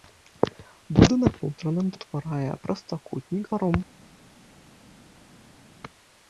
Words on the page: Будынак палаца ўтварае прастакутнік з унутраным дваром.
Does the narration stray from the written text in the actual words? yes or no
yes